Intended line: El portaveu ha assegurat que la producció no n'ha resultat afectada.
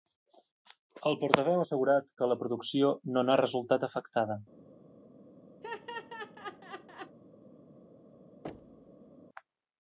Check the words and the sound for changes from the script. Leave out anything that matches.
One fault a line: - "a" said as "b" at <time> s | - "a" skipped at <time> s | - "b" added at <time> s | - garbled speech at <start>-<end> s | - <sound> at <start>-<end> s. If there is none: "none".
- laugh at 5.6-7.2 s
- thud at 8.4-9.1 s